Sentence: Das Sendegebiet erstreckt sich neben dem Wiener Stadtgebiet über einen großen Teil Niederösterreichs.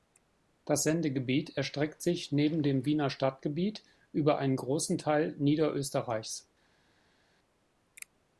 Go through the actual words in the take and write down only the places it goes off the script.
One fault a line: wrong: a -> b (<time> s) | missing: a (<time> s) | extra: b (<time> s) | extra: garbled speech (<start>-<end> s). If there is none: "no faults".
no faults